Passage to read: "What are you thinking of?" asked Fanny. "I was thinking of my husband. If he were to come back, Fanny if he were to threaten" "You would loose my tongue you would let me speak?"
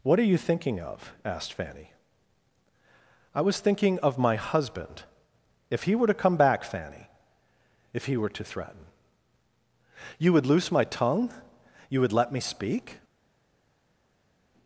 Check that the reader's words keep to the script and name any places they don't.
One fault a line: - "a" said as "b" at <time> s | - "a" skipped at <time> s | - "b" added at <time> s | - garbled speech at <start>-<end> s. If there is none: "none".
none